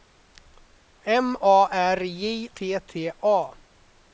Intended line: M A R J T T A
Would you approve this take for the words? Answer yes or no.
yes